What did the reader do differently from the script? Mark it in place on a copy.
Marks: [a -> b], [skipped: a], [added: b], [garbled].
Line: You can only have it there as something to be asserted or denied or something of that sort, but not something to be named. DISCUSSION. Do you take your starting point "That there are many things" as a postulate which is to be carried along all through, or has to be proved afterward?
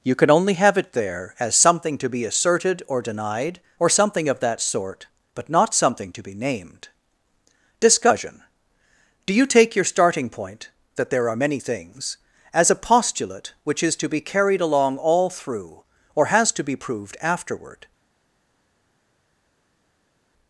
You can only have it there as something to be asserted or denied or something of that sort, but not something to be named. DISCUSSION. Do you take your starting point "That there are many things" as a postulate which is to be carried along all through, or has to be proved afterward?